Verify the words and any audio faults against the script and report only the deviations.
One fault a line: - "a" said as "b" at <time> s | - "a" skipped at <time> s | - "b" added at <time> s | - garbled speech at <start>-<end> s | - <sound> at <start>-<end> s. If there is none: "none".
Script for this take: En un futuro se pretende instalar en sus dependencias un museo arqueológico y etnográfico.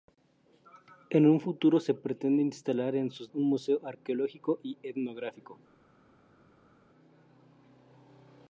- "dependencias" skipped at 3.3 s